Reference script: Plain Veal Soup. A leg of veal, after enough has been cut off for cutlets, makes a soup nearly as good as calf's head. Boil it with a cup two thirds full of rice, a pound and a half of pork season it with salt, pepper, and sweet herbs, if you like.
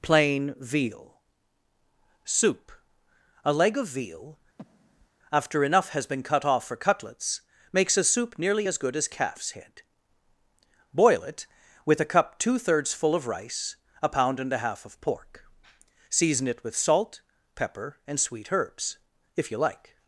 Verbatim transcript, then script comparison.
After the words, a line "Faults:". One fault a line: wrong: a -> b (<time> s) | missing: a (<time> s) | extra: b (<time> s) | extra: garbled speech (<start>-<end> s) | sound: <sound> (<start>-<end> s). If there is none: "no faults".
Plain Veal Soup. A leg of veal, after enough has been cut off for cutlets, makes a soup nearly as good as calf's head. Boil it with a cup two thirds full of rice, a pound and a half of pork season it with salt, pepper, and sweet herbs, if you like.
Faults:
sound: breath (4.6-5.1 s)